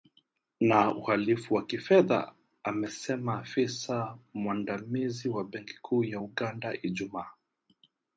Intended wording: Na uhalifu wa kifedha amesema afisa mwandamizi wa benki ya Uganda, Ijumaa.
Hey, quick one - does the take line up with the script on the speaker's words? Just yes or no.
no